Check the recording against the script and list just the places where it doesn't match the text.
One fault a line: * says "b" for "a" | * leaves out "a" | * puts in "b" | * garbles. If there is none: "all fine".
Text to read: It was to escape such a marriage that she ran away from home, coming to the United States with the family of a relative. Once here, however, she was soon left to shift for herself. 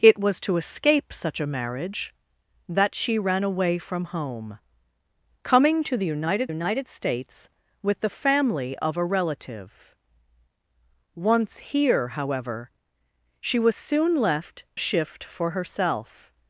* puts in "United"
* leaves out "to"